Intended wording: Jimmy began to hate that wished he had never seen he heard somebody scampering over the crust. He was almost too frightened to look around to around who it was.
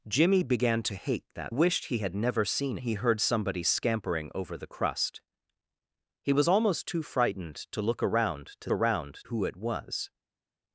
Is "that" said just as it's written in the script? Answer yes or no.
yes